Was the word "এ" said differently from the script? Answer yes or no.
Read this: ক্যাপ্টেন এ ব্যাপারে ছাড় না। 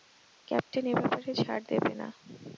no